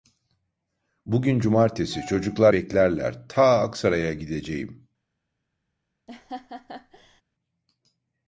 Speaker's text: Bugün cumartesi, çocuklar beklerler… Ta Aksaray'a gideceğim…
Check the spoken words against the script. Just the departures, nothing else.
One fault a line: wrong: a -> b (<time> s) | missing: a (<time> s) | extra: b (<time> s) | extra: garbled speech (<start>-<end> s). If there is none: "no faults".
no faults